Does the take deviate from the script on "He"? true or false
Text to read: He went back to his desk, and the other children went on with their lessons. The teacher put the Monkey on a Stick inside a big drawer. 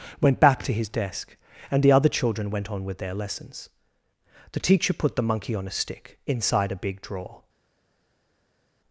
true